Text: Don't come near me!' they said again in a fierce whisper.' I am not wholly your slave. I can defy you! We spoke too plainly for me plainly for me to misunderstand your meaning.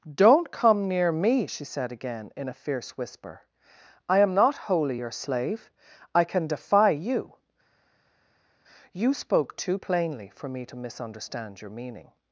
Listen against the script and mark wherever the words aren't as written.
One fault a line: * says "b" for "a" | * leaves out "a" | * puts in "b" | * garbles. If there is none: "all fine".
* says "she" for "they"
* says "You" for "We"
* leaves out "plainly for me"